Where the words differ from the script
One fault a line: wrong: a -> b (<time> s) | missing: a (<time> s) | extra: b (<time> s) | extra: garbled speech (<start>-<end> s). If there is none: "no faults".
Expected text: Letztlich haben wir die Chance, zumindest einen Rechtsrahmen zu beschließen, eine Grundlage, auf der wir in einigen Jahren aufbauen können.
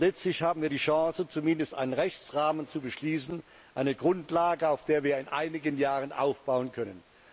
no faults